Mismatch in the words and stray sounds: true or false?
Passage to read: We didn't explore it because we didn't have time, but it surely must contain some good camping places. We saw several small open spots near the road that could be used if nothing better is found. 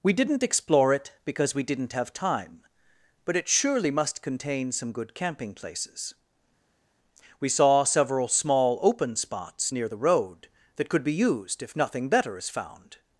false